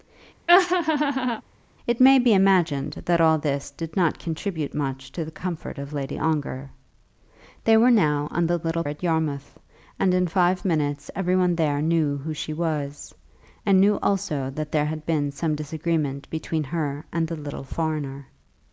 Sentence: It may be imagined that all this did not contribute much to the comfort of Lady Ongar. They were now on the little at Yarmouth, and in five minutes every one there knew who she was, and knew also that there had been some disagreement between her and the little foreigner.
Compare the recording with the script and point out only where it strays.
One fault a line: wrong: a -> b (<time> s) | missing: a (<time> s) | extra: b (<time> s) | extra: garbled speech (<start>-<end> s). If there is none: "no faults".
no faults